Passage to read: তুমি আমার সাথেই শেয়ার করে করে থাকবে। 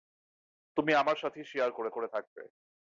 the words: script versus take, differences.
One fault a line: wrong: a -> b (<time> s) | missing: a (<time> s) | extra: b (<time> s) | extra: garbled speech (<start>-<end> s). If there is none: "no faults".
no faults